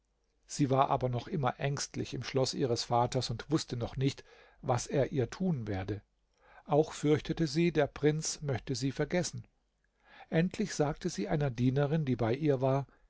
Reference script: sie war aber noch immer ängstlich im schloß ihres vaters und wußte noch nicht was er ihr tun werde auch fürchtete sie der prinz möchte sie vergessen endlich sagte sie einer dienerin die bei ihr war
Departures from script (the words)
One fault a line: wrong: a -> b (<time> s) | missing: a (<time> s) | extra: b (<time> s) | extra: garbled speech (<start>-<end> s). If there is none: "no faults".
no faults